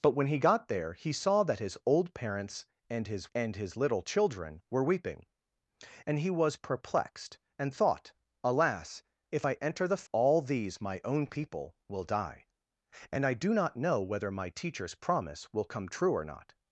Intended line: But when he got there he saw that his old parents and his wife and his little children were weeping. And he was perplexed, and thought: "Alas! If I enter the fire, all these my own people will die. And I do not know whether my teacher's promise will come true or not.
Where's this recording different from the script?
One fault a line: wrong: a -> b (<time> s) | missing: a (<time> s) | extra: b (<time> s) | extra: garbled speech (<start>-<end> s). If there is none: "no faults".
missing: wife (3.3 s)
missing: fire (10.0 s)